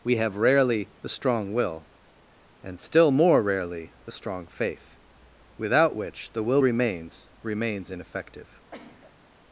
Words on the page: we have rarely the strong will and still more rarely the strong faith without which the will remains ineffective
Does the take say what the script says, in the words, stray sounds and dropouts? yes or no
no